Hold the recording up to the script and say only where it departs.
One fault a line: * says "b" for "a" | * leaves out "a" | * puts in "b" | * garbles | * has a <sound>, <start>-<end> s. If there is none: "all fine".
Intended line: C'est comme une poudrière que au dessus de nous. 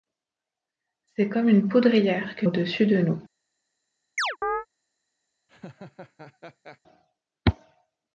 * has a chirp, 4.2-4.7 s
* has a laugh, 5.5-6.8 s